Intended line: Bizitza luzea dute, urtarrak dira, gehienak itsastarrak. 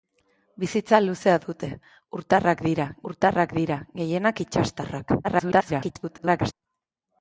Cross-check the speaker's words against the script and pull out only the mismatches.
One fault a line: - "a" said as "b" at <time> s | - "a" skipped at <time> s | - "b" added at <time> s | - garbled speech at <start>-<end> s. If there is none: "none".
- "urtarrak dira" added at 3.1 s
- garbled speech at 5.2-6.5 s